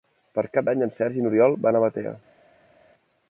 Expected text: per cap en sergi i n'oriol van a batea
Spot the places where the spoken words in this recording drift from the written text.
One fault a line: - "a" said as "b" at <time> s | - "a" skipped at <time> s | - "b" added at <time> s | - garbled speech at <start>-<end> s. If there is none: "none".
- "d'any" added at 0.7 s